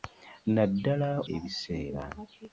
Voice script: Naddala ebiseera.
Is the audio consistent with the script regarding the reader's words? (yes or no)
yes